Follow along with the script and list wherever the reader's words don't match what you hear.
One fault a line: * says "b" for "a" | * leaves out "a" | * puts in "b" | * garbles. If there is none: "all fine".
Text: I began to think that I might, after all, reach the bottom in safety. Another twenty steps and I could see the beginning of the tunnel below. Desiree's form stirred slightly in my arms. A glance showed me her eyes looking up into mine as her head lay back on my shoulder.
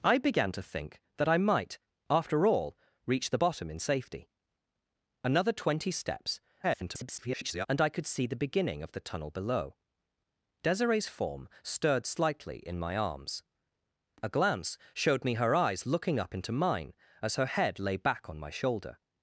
* garbles